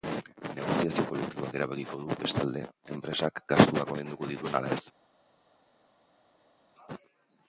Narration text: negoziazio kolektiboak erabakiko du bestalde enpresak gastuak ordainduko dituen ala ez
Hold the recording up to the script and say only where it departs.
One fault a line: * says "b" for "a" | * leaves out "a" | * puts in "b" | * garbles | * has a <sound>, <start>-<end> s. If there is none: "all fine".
all fine